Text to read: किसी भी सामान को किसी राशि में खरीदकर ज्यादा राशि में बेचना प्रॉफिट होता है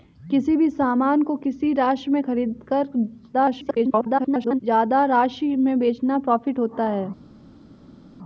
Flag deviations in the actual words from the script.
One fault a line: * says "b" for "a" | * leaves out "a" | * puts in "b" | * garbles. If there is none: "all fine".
* garbles